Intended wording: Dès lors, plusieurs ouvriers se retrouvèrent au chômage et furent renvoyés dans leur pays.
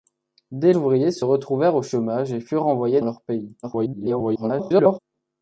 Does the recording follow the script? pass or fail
fail